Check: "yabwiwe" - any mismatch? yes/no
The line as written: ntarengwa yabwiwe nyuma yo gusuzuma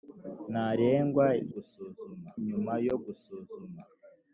yes